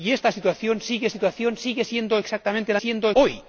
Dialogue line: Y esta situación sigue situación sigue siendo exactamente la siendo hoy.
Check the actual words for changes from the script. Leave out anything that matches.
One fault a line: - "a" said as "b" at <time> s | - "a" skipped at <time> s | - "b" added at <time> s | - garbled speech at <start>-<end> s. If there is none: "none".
none